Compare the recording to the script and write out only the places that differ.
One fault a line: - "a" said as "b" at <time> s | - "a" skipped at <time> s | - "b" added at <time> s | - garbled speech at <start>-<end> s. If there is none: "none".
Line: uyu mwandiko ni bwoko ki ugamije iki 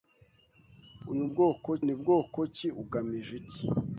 - "mwandiko" said as "bwoko" at 1.3 s